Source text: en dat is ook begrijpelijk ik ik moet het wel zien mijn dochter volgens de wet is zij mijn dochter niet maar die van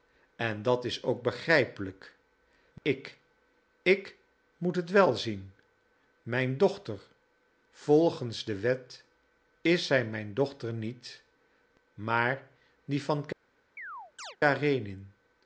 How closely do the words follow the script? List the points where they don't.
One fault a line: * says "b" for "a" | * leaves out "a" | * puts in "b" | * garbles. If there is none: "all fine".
all fine